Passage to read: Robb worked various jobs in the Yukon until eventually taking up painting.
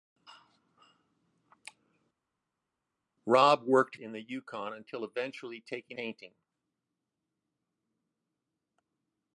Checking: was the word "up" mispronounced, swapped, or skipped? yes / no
yes